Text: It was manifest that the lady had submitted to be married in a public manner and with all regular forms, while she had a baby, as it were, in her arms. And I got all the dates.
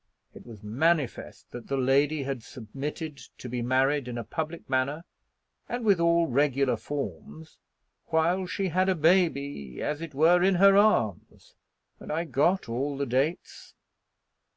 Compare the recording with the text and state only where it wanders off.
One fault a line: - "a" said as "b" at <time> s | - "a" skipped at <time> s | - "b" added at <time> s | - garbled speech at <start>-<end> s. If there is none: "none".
none